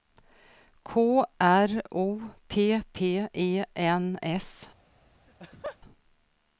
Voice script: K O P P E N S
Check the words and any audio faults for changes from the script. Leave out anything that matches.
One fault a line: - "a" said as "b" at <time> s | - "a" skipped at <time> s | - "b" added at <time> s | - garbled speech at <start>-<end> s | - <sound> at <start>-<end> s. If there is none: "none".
- "R" added at 1.4 s
- laugh at 5.3-5.8 s